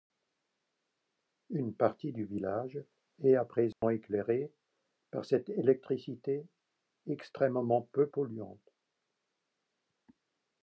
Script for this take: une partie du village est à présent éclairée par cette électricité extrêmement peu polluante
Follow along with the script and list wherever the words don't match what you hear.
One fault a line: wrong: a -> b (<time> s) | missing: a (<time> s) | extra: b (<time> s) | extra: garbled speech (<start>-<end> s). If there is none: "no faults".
no faults